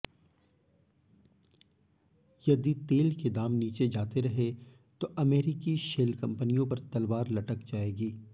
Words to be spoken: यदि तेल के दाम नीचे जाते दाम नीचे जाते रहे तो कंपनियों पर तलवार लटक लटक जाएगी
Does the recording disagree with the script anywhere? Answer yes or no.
yes